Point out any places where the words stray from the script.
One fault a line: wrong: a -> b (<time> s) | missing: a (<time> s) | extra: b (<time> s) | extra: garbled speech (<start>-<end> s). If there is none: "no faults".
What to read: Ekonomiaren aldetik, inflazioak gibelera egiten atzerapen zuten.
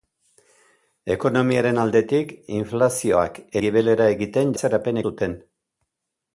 no faults